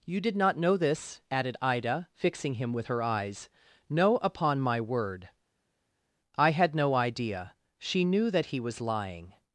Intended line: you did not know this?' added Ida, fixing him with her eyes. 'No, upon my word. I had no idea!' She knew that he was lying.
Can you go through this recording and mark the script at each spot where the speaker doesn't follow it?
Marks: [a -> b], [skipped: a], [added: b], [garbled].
you did not know this?' added Ida, fixing him with her eyes. 'No, upon my word. I had no idea!' She knew that he was lying.